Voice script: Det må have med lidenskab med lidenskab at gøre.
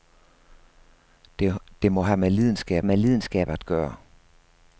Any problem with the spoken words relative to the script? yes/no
no